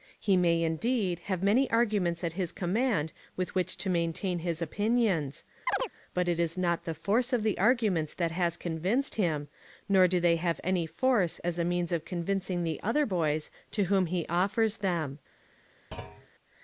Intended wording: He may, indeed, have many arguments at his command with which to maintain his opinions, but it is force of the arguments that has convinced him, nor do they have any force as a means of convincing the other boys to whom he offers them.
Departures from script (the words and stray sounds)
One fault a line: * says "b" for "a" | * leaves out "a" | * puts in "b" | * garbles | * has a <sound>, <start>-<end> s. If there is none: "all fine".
* has a chirp, 5.7-5.9 s
* puts in "not the"
* has a thud, 15.9-16.3 s